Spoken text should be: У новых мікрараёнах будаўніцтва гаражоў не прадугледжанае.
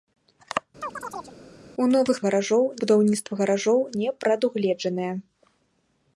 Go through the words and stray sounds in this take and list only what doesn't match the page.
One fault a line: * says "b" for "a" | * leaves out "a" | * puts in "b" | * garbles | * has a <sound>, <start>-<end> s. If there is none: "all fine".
* has a chirp, 0.8-1.4 s
* says "гаражоў" for "мікрараёнах"